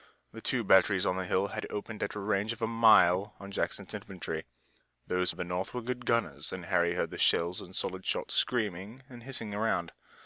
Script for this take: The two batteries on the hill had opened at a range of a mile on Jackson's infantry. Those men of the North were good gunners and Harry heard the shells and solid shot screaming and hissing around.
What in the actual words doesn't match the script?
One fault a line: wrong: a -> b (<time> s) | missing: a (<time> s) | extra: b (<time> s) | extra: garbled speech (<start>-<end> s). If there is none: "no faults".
missing: men (5.3 s)